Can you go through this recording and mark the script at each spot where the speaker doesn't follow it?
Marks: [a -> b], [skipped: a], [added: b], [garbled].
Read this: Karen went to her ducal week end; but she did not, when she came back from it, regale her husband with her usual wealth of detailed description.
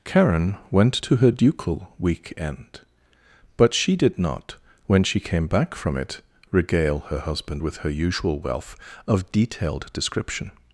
Karen went to her ducal week end; but she did not, when she came back from it, regale her husband with her usual wealth of detailed description.